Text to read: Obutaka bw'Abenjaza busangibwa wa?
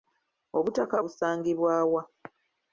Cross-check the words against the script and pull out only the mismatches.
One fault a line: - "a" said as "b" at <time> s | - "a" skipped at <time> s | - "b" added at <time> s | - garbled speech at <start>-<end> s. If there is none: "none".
- "bw'Abenjaza" skipped at 1.0 s